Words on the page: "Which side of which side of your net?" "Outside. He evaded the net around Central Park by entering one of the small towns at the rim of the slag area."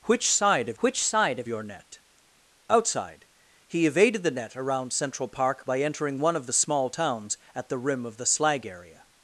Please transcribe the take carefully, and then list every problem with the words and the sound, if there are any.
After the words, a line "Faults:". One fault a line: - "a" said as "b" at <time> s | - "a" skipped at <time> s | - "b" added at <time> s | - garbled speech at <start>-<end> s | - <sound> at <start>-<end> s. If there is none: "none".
"Which side of which side of your net?" "Outside. He evaded the net around Central Park by entering one of the small towns at the rim of the slag area."
Faults:
none